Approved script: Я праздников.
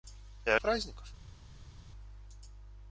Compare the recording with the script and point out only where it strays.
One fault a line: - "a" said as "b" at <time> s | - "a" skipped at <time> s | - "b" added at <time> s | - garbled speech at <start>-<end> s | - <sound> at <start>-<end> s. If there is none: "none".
none